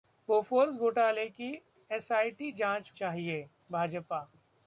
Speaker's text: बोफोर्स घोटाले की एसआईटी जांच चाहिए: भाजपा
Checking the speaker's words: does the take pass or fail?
pass